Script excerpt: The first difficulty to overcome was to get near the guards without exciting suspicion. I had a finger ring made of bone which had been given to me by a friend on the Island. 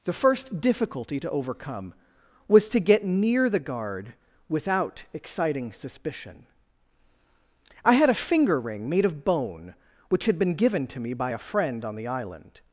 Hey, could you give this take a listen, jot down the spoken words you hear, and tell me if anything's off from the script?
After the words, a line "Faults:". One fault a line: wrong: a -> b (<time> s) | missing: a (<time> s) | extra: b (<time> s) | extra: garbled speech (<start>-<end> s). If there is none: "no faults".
The first difficulty to overcome was to get near the guard without exciting suspicion. I had a finger ring made of bone which had been given to me by a friend on the Island.
Faults:
wrong: guards -> guard (3.6 s)